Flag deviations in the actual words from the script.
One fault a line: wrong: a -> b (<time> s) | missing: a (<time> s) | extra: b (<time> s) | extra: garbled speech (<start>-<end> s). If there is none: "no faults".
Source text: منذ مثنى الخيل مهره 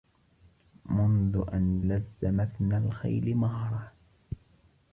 extra: أن لز (1.5 s)